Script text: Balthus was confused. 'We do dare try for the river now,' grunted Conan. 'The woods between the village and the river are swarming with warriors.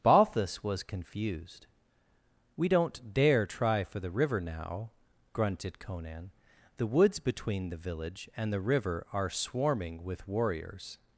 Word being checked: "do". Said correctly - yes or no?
no